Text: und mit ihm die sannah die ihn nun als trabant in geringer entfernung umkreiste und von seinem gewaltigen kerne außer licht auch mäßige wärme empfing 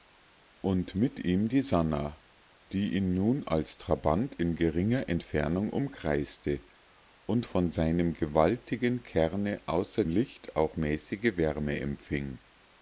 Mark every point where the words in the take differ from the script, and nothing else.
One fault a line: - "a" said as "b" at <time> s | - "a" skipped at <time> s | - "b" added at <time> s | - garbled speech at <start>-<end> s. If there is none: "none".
none